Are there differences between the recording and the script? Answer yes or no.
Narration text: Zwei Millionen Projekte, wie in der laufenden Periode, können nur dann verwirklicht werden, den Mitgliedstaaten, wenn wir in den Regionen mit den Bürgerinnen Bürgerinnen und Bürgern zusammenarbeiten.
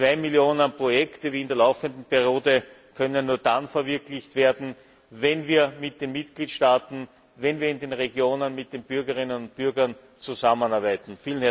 yes